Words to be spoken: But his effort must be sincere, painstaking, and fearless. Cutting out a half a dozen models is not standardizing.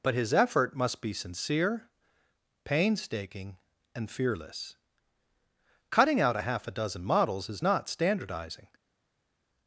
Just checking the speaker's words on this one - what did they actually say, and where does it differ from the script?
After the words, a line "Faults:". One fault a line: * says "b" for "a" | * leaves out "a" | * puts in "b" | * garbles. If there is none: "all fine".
But his effort must be sincere, painstaking, and fearless. Cutting out a half a dozen models is not standardizing.
Faults:
all fine